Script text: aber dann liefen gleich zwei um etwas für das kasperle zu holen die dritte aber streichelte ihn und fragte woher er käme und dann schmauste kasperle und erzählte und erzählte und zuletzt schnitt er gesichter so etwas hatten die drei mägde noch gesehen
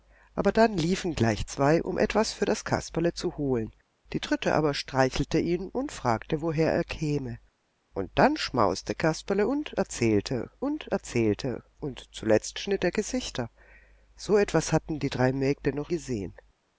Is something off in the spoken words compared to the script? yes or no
no